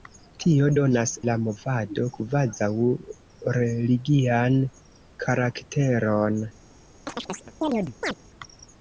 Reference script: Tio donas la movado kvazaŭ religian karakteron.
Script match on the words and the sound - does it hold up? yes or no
no